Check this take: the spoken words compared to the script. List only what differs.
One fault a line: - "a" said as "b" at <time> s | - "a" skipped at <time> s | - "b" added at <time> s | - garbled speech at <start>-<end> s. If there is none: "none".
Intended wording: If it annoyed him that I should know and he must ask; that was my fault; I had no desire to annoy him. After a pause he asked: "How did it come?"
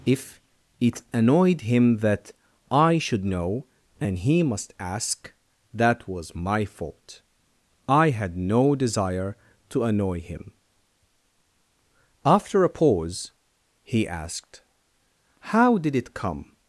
none